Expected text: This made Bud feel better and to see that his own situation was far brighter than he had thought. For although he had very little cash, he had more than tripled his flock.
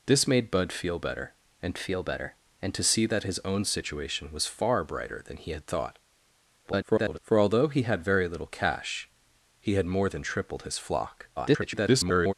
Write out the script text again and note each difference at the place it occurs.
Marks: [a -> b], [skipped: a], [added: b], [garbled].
This made Bud feel better and [added: feel better and] to see that his own situation was far brighter than he had thought. [garbled] For although he had very little cash, he had more than tripled his flock. [garbled]